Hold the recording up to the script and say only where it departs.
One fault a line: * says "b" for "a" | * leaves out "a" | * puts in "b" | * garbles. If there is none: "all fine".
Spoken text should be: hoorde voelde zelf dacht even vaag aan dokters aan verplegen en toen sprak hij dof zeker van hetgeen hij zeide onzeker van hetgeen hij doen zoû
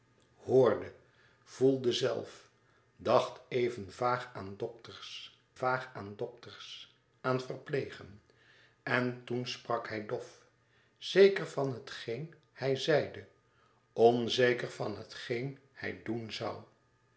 * puts in "vaag aan dokters"